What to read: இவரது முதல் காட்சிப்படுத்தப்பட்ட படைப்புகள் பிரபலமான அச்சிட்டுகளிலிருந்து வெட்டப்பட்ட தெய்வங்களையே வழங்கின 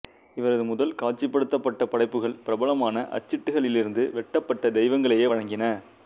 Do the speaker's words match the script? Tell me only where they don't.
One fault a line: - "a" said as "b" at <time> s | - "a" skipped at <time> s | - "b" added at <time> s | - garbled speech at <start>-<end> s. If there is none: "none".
none